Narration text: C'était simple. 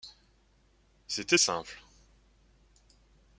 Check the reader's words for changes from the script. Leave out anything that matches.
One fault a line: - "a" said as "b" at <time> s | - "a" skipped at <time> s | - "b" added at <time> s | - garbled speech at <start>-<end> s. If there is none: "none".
none